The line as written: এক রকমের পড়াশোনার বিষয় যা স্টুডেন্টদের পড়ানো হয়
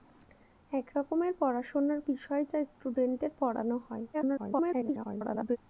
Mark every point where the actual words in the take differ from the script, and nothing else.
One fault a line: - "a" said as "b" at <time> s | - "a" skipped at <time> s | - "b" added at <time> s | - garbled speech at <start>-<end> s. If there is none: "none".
- garbled speech at 4.1-5.6 s